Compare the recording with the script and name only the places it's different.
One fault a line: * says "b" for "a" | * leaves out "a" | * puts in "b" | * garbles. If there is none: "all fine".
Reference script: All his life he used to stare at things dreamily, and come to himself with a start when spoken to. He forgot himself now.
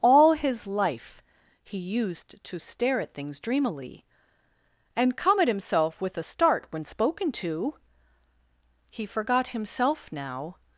* says "at" for "to"